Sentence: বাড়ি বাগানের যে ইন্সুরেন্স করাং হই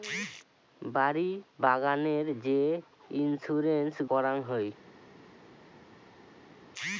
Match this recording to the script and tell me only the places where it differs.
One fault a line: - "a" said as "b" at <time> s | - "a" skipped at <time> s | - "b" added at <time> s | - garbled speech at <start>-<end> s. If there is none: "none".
none